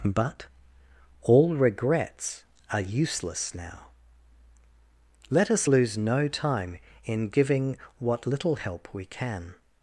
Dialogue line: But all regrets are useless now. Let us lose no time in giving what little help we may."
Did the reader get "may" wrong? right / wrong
wrong